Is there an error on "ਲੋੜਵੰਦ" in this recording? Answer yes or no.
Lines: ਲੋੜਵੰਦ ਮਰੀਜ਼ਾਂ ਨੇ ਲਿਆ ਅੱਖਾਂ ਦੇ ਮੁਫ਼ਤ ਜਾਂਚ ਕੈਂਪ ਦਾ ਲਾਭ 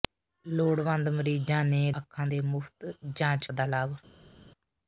no